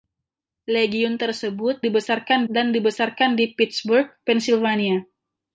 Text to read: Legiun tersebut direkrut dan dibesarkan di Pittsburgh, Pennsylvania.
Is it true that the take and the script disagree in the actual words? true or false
true